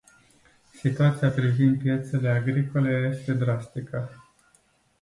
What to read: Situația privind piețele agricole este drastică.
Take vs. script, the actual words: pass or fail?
pass